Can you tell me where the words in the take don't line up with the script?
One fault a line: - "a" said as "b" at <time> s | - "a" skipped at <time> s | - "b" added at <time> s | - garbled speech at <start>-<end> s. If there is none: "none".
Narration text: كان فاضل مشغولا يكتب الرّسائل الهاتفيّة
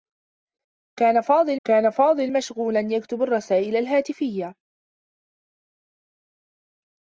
- "كان فاضل" added at 1.7 s